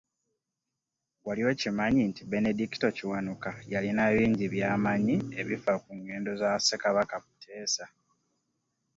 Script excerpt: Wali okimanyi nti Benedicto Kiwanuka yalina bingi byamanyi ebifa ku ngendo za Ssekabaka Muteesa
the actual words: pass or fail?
pass